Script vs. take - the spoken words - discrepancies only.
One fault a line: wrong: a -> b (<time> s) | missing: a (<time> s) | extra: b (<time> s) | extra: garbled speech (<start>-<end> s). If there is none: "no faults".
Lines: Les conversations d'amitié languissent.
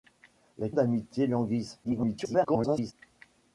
missing: conversations (0.7 s)
extra: garbled speech (1.8-2.9 s)